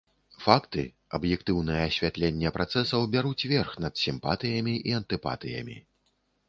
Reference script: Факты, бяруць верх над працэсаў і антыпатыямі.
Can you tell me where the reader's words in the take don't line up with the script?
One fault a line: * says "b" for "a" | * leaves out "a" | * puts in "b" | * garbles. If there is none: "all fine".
* puts in "аб'ектыўнае асвятленне працэсаў"
* says "сімпатыямі" for "працэсаў"